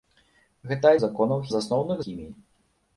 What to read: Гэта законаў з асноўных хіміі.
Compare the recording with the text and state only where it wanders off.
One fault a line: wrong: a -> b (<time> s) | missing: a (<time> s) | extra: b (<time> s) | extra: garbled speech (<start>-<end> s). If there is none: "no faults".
no faults